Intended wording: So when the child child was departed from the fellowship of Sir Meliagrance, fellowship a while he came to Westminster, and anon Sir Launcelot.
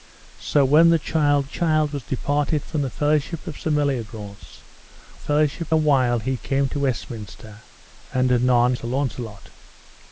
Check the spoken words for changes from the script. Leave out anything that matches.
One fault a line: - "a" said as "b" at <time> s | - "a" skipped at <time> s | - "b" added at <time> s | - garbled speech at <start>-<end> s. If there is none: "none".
none